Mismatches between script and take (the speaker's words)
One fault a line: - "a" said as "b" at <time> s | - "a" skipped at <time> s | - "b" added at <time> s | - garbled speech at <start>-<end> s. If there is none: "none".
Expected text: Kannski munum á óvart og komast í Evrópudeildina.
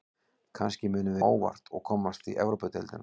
none